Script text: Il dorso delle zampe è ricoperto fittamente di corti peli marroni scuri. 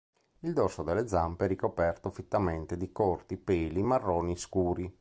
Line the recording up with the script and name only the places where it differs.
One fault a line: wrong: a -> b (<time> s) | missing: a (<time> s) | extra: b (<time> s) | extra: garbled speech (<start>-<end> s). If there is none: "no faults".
no faults